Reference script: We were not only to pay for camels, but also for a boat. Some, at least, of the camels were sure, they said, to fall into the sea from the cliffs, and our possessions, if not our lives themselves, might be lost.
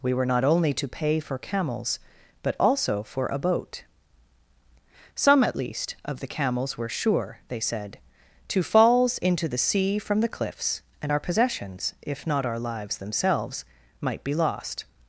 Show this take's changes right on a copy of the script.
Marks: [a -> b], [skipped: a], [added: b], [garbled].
We were not only to pay for camels, but also for a boat. Some, at least, of the camels were sure, they said, to [fall -> falls] into the sea from the cliffs, and our possessions, if not our lives themselves, might be lost.